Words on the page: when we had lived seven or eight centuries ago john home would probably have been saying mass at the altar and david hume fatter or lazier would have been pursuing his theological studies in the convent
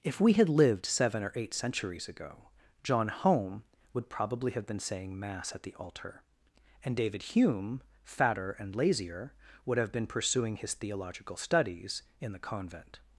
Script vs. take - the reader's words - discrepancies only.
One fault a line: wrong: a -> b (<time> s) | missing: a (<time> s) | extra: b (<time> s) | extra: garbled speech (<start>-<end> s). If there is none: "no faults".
wrong: when -> if (0.0 s)
wrong: or -> and (8.5 s)